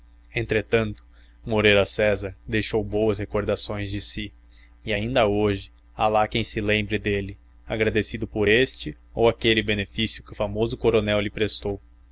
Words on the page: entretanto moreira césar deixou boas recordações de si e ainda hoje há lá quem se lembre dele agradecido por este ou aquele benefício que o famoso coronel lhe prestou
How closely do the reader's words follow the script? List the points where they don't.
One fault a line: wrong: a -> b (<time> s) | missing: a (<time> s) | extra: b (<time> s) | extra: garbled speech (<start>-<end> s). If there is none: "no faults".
no faults